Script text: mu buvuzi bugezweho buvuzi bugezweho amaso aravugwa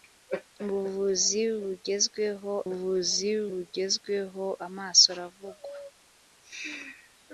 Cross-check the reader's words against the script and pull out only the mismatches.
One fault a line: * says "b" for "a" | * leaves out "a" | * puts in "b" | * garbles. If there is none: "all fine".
all fine